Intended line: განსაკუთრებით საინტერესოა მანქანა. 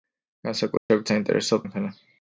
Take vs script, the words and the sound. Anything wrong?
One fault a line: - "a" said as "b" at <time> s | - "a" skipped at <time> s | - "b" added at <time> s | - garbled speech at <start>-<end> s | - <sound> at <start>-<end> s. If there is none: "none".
- dropout at 0.8-0.9 s